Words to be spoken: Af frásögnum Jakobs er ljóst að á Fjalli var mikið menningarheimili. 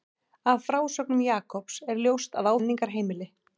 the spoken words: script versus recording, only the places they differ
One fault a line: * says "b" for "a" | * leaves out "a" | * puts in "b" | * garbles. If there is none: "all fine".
* leaves out "Fjalli var mikið"